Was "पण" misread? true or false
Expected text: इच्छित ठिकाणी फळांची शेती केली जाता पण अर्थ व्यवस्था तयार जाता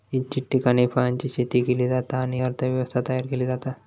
true